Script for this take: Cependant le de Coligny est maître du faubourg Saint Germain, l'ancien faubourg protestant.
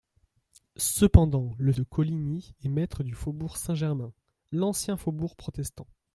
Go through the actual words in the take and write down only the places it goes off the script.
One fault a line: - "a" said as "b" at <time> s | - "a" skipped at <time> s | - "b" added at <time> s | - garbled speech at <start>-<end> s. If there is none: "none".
none